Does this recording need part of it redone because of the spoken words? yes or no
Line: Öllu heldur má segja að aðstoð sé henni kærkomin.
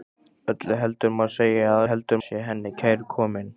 yes